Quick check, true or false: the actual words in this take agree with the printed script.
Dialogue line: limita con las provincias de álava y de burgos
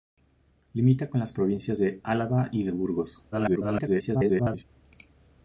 false